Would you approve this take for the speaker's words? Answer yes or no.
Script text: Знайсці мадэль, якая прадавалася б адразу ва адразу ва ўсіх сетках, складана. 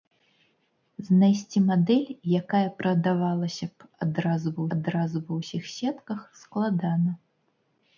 yes